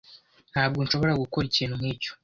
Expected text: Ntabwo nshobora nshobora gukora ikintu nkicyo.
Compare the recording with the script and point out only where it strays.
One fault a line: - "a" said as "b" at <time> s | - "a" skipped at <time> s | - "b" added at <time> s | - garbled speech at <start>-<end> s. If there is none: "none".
- "nshobora" skipped at 1.2 s